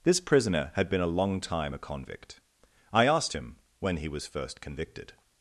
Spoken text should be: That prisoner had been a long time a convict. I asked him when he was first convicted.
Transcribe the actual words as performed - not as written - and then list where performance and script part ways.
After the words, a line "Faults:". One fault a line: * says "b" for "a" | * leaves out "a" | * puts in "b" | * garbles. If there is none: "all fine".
This prisoner had been a long time a convict. I asked him when he was first convicted.
Faults:
* says "This" for "That"